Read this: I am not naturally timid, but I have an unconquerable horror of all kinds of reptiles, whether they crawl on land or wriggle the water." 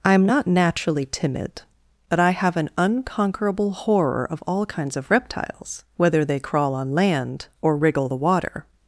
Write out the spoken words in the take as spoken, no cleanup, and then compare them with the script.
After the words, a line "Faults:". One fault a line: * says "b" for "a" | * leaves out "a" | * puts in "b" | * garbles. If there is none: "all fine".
I am not naturally timid, but I have an unconquerable horror of all kinds of reptiles, whether they crawl on land or wriggle the water."
Faults:
all fine